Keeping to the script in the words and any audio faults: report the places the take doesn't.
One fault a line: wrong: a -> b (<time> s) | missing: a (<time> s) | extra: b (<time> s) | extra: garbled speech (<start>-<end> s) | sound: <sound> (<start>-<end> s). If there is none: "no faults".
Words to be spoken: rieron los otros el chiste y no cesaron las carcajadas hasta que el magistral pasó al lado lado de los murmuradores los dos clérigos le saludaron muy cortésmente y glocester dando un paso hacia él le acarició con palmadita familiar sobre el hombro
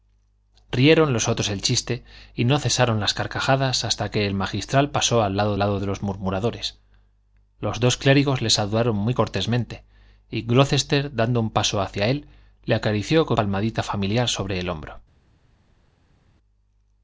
no faults